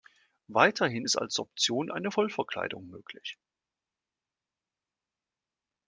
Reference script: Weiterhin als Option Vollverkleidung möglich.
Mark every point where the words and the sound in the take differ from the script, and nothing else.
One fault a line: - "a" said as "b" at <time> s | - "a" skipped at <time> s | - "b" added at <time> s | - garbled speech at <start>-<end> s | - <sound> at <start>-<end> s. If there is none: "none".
- "ist" added at 1.0 s
- "eine" added at 1.9 s